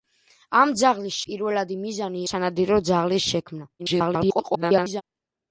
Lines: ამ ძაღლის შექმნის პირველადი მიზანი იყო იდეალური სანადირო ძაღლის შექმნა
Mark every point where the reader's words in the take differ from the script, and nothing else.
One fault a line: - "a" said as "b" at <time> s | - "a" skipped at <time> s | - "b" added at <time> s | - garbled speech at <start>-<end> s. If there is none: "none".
- "შექმნის" skipped at 1.2 s
- "იყო იდეალური" skipped at 2.2 s
- garbled speech at 3.8-5.0 s